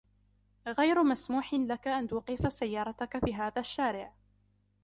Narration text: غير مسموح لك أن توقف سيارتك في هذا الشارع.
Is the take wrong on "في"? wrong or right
right